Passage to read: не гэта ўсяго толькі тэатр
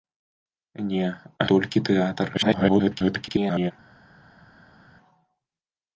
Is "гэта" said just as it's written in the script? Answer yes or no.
no